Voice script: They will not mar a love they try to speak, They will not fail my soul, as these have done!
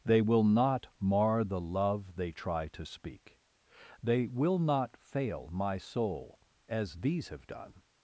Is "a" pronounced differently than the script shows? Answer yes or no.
yes